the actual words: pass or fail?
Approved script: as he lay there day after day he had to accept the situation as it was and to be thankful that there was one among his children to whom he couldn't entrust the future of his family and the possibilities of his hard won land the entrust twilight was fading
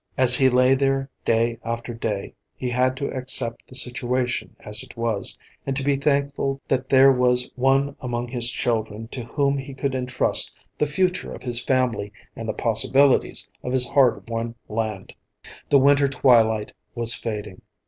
fail